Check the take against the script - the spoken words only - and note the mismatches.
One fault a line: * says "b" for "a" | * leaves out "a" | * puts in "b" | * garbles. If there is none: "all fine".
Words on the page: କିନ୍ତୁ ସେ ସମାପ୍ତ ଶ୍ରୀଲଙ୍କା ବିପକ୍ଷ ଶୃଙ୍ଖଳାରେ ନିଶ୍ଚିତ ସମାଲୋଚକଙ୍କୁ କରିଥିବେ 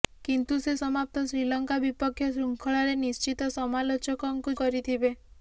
all fine